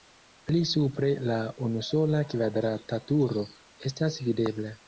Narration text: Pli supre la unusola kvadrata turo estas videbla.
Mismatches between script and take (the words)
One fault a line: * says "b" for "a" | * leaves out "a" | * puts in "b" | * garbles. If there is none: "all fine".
all fine